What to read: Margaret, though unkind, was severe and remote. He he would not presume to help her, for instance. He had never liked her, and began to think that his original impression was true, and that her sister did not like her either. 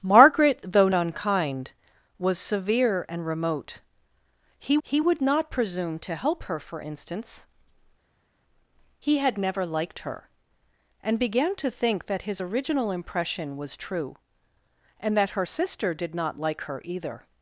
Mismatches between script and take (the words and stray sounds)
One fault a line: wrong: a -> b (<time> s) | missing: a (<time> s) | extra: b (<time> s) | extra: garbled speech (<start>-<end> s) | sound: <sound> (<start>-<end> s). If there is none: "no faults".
no faults